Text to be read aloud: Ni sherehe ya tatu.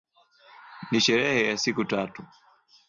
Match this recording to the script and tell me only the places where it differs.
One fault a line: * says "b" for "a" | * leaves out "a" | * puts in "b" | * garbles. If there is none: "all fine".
* puts in "siku"